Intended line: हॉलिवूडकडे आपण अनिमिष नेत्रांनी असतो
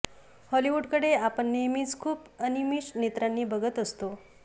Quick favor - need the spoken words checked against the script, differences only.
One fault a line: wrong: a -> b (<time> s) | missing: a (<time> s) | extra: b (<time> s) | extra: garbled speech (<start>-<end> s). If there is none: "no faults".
extra: नेहमीच खूप (1.5 s)
extra: बघत (3.5 s)